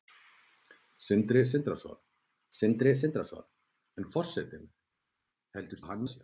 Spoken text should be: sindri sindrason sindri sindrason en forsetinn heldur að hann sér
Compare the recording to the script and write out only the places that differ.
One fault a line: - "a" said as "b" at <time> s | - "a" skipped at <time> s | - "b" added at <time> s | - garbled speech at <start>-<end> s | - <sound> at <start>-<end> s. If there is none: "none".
none